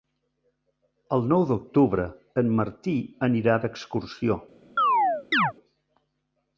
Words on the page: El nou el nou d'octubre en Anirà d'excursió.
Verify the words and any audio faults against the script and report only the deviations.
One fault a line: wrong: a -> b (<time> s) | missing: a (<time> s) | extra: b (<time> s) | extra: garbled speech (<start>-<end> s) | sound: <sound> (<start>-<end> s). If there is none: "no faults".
missing: el nou (1.4 s)
extra: Martí (2.6 s)
sound: chirp (4.8-5.5 s)